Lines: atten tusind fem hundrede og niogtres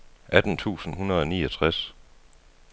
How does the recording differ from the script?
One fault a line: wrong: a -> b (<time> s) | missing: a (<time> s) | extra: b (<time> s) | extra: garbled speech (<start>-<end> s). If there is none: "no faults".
missing: fem (0.9 s)